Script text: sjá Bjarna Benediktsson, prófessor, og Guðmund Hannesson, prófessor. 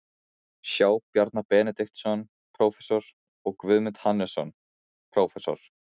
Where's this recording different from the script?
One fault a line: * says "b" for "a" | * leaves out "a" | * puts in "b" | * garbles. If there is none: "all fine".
all fine